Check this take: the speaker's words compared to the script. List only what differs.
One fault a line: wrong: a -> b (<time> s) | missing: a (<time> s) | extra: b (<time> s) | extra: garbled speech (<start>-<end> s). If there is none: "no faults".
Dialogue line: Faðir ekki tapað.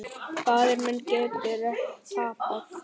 extra: minn getur (0.8 s)